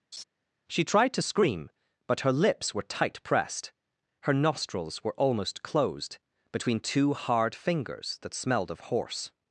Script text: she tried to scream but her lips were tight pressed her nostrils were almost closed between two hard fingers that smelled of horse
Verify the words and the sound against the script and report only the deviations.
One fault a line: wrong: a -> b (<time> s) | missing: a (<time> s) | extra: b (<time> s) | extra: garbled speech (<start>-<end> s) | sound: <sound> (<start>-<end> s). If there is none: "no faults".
sound: laugh (0.1-0.2 s)